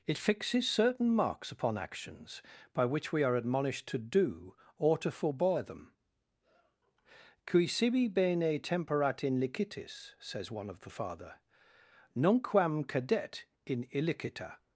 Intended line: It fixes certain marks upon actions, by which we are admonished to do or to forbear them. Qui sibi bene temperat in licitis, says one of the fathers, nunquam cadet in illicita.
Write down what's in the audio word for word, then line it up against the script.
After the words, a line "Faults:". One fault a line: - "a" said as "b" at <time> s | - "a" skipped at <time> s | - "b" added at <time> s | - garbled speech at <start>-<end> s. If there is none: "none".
It fixes certain marks upon actions, by which we are admonished to do or to forbear them. Qui sibi bene temperat in licitis, says one of the father, nunquam cadet in illicita.
Faults:
- "fathers" said as "father" at 10.9 s